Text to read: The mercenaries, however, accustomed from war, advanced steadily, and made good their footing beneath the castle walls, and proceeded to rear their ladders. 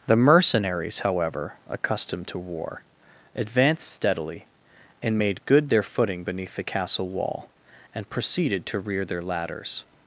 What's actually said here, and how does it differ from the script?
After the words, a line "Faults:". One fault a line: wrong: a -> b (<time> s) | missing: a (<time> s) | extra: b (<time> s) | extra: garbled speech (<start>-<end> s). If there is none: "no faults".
The mercenaries, however, accustomed to war, advanced steadily, and made good their footing beneath the castle wall, and proceeded to rear their ladders.
Faults:
wrong: from -> to (2.3 s)
wrong: walls -> wall (7.1 s)